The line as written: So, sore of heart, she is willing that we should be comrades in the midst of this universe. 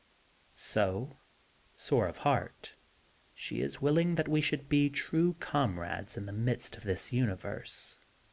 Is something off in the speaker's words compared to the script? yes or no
yes